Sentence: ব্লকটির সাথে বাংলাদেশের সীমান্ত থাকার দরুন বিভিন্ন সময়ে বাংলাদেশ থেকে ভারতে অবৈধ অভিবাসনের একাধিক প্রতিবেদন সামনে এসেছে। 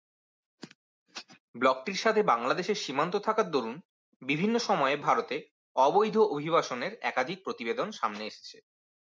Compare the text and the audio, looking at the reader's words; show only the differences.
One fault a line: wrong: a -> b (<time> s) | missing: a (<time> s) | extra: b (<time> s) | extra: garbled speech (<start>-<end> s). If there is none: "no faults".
missing: বাংলাদেশ থেকে (5.0 s)